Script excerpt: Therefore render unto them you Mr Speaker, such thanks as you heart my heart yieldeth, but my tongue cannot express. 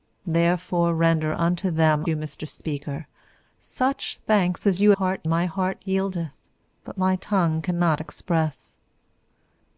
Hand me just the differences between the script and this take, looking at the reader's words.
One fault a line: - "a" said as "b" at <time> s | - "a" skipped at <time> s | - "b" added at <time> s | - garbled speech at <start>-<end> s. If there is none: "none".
none